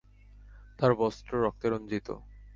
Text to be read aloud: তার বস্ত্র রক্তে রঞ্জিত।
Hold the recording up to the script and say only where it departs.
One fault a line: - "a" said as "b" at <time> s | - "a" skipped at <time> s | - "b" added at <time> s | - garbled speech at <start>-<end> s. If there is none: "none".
none